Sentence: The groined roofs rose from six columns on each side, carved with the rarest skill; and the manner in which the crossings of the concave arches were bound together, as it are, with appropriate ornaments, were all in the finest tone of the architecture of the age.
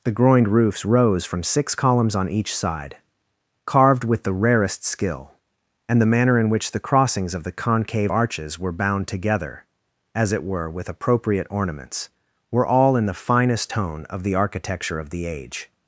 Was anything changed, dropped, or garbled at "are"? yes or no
yes